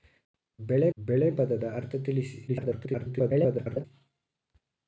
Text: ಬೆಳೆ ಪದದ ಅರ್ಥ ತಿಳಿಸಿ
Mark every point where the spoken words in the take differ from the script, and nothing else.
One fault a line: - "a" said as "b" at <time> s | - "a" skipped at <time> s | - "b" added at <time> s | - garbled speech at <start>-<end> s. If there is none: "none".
- "ಬೆಳೆ" added at 1.0 s
- garbled speech at 2.5-3.8 s